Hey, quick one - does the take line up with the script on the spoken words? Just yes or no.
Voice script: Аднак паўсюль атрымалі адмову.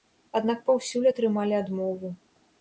yes